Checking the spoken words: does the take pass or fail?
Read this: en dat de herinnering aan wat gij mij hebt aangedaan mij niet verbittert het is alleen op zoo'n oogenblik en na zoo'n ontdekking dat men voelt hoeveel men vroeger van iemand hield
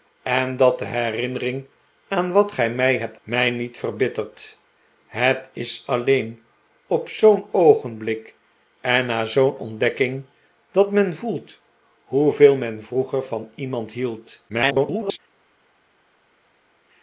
fail